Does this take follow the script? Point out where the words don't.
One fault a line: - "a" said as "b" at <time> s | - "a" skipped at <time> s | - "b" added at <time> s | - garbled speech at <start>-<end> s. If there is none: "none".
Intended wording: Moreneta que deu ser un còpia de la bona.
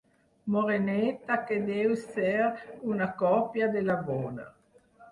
- "un" said as "una" at 3.0 s